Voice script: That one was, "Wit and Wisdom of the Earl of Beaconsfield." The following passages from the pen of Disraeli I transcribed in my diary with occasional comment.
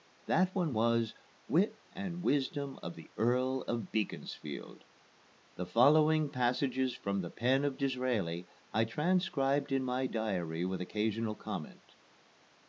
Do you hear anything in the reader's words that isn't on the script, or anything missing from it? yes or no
no